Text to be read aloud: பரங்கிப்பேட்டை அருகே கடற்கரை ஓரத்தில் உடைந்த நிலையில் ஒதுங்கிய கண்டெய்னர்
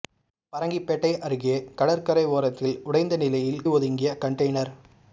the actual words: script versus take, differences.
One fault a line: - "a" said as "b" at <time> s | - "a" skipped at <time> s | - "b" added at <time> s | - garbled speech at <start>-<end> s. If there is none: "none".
none